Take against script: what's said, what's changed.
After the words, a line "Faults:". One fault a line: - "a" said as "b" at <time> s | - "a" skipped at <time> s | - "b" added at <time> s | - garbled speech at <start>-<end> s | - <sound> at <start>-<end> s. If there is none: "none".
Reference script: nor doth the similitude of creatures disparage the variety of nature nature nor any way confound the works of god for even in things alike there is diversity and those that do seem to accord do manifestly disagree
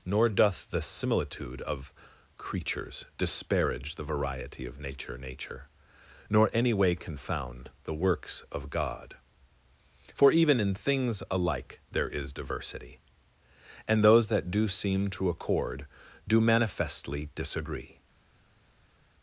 nor doth the similitude of creatures disparage the variety of nature nature nor any way confound the works of god for even in things alike there is diversity and those that do seem to accord do manifestly disagree
Faults:
none